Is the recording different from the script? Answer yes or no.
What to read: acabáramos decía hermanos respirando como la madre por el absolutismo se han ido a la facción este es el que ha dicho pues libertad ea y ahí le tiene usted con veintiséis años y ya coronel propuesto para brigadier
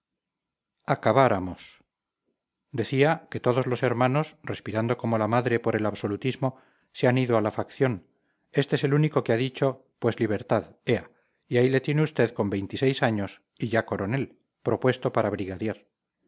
yes